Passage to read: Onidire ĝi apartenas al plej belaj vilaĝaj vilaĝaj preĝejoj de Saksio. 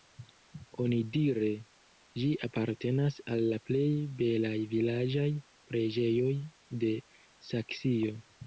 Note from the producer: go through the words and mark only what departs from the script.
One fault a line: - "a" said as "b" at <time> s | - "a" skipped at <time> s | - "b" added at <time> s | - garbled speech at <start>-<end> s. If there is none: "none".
- "la" added at 3.5 s
- "vilaĝaj" skipped at 5.3 s